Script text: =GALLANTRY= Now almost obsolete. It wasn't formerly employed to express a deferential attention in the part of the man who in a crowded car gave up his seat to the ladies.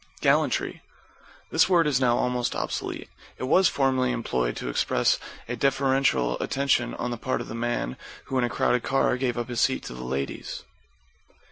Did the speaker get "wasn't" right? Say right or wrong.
wrong